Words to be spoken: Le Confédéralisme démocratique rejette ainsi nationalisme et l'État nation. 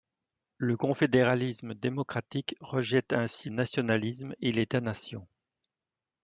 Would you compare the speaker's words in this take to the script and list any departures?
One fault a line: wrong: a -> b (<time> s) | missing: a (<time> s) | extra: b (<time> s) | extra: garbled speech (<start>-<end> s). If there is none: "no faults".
no faults